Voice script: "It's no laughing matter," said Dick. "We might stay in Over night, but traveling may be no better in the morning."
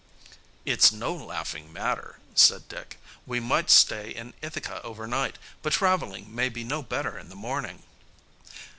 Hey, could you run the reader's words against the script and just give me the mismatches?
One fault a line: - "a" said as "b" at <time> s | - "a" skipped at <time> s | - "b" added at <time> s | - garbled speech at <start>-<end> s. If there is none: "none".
- "Ithaca" added at 4.4 s